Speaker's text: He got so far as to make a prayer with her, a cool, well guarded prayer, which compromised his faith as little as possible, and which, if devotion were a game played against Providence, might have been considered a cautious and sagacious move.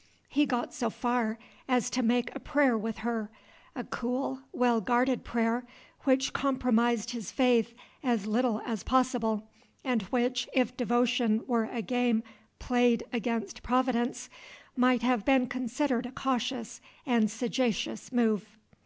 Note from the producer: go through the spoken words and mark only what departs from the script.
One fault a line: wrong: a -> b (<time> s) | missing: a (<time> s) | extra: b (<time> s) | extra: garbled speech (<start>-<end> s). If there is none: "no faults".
no faults